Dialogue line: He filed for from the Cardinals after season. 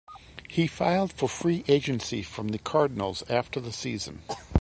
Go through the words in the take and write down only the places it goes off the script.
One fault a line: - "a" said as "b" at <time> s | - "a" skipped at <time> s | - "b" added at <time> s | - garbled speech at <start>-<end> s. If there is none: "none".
- "free agency" added at 1.3 s
- "the" added at 3.6 s